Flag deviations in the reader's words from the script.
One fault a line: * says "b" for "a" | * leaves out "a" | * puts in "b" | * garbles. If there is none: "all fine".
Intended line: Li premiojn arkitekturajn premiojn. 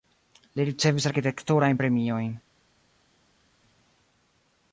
* says "ricevis" for "premiojn"